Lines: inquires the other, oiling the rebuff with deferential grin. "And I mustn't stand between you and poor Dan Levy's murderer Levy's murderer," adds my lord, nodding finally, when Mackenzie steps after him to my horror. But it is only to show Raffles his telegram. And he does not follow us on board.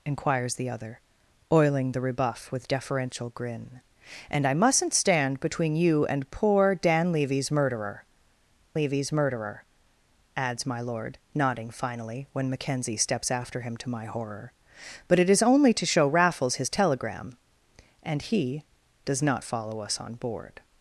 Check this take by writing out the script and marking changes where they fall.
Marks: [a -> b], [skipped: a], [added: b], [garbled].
inquires the other, oiling the rebuff with deferential grin. "And I mustn't stand between you and poor Dan Levy's murderer Levy's murderer," adds my lord, nodding finally, when Mackenzie steps after him to my horror. But it is only to show Raffles his telegram. And he does not follow us on board.